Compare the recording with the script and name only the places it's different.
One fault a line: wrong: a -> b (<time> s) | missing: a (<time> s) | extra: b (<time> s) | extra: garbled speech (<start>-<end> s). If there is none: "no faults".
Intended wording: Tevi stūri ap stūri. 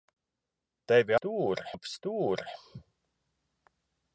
no faults